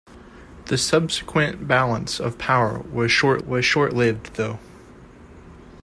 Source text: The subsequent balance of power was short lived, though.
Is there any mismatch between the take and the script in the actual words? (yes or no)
yes